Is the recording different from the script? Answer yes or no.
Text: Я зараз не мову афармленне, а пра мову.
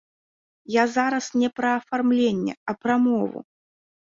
yes